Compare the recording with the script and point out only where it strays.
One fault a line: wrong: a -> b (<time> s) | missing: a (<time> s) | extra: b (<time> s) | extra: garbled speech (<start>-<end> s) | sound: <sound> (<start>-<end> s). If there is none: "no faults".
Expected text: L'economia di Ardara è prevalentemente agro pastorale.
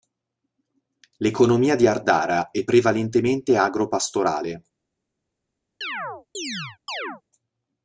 sound: chirp (5.8-7.2 s)